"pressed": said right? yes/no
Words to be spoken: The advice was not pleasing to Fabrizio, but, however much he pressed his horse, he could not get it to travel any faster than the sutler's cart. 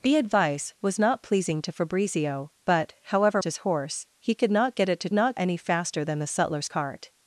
no